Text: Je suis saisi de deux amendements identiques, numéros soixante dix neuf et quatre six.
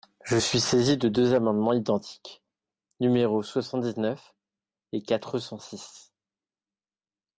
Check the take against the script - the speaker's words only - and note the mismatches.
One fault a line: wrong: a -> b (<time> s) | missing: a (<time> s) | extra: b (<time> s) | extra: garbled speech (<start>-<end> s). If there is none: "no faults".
extra: cent (5.4 s)